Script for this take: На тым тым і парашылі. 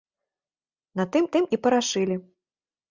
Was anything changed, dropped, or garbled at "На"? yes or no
no